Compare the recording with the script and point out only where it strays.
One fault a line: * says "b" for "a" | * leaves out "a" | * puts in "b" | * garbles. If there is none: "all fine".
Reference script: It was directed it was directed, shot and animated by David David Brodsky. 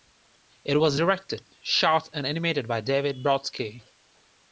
* leaves out "it was directed"
* leaves out "David"